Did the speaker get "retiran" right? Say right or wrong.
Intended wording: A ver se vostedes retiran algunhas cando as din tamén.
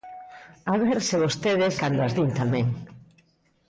wrong